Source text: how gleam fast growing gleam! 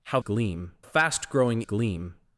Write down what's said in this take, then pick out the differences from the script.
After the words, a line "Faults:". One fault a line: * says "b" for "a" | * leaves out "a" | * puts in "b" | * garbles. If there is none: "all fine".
how gleam fast growing gleam!
Faults:
all fine